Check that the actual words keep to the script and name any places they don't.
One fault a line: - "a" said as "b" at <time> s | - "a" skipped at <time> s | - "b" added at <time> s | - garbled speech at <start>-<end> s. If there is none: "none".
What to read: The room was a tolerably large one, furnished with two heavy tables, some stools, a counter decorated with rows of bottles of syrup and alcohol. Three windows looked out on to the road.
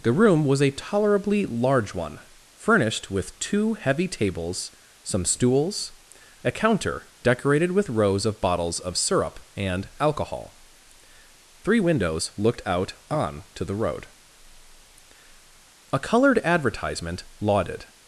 - "A coloured advertisement lauded" added at 15.9 s